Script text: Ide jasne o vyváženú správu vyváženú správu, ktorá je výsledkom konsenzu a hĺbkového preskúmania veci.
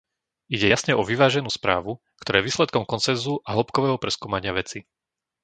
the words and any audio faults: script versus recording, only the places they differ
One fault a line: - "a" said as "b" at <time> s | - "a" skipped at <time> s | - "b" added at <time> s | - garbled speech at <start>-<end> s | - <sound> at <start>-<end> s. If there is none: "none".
- "vyváženú správu" skipped at 2.0 s